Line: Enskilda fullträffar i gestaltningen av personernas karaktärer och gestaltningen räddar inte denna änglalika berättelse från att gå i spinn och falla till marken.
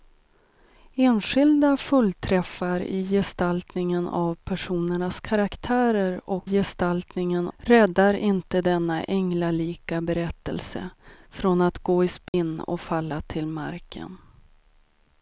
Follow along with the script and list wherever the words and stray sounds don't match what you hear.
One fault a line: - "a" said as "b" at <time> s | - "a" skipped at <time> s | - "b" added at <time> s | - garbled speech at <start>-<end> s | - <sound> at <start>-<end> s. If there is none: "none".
- dropout at 12.3-12.3 s